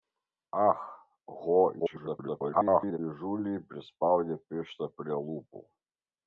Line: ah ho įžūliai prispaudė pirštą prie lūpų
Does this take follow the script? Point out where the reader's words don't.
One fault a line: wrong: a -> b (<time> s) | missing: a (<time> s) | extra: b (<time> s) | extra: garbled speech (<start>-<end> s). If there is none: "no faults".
extra: garbled speech (1.8-3.0 s)